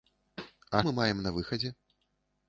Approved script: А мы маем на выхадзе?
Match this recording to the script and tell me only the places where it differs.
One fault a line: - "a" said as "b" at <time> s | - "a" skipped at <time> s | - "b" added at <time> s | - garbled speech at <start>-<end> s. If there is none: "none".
none